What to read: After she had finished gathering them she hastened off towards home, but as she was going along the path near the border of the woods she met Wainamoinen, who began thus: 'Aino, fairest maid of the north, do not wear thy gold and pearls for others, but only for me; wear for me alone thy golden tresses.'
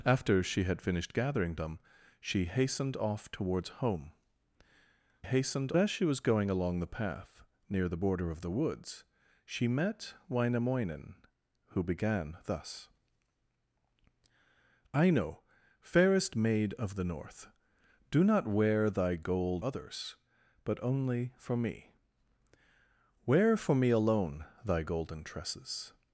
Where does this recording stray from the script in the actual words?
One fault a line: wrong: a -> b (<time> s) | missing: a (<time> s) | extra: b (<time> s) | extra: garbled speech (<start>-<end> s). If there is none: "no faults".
wrong: but -> hastened (5.2 s)
missing: and pearls for (19.6 s)